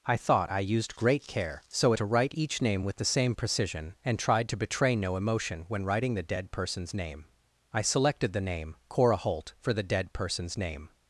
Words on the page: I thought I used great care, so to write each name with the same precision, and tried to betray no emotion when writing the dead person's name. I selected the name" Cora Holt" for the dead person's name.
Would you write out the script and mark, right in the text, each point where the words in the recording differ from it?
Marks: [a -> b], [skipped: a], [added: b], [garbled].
I thought I used great care, so to write each name with the same precision, and tried to betray no emotion when writing the dead person's name. I selected the name" Cora Holt" for the dead person's name.